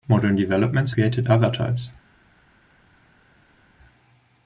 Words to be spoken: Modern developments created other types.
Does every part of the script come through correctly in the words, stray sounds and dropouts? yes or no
yes